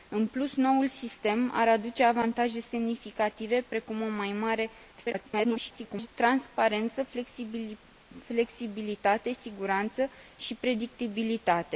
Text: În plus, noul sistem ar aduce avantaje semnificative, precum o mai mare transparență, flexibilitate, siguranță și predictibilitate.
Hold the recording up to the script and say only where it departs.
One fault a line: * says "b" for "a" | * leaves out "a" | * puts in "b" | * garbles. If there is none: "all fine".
* garbles